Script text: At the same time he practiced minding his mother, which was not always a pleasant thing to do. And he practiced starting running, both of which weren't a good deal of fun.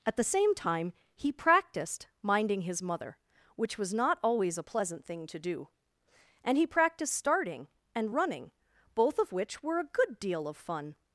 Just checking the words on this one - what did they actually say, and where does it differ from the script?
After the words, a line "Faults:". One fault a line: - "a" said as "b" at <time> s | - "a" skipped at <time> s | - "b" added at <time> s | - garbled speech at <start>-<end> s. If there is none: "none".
At the same time he practiced minding his mother, which was not always a pleasant thing to do. And he practiced starting and running, both of which were a good deal of fun.
Faults:
- "and" added at 8.0 s
- "weren't" said as "were" at 9.6 s